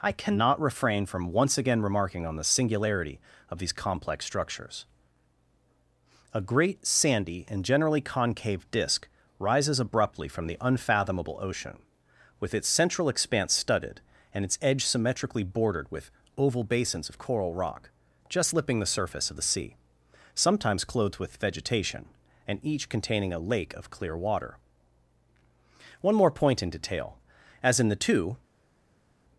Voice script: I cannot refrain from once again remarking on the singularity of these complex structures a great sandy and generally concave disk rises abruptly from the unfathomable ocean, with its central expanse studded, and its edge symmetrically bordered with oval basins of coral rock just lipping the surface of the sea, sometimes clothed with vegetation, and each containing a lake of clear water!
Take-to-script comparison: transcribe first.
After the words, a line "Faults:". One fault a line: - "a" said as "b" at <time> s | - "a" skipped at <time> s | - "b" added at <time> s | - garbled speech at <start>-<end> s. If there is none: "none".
I cannot refrain from once again remarking on the singularity of these complex structures a great sandy and generally concave disk rises abruptly from the unfathomable ocean, with its central expanse studded, and its edge symmetrically bordered with oval basins of coral rock just lipping the surface of the sea, sometimes clothed with vegetation, and each containing a lake of clear water! One more point in detail: as in the two
Faults:
- "One more point in detail as in the two" added at 26.0 s